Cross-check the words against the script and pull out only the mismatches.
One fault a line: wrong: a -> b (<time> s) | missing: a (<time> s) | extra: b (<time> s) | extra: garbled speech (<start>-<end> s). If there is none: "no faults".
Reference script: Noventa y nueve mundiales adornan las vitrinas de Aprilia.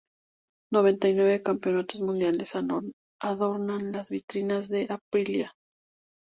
extra: campeonatos (1.4 s)